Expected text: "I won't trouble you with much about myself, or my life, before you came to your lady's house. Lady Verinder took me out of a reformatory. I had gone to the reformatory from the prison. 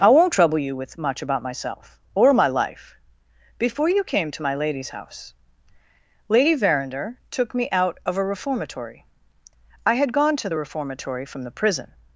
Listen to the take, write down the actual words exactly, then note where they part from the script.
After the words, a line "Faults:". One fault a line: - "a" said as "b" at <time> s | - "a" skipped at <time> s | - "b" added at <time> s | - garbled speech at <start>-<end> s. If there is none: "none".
"I won't trouble you with much about myself, or my life, before you came to my lady's house. Lady Verinder took me out of a reformatory. I had gone to the reformatory from the prison.
Faults:
- "your" said as "my" at 4.4 s